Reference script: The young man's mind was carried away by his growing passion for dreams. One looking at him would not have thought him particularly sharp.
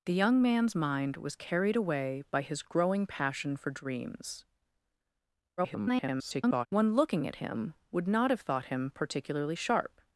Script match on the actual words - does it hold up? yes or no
no